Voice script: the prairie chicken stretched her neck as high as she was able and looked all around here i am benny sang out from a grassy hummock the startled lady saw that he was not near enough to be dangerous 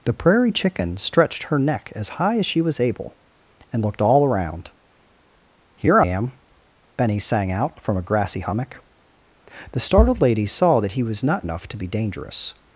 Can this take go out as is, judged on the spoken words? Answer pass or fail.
fail